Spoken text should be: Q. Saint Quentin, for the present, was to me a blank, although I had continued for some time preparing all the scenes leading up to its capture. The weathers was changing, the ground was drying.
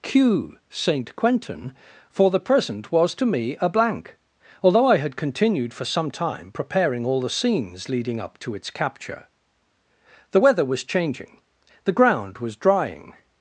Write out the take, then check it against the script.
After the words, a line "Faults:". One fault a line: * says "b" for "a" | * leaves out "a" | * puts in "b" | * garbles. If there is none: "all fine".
Q. Saint Quentin, for the present, was to me a blank, although I had continued for some time preparing all the scenes leading up to its capture. The weather was changing, the ground was drying.
Faults:
* says "weather" for "weathers"